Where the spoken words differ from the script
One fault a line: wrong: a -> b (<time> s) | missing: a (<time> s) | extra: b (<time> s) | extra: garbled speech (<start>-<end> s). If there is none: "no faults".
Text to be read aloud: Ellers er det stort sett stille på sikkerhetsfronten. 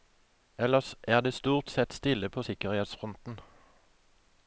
no faults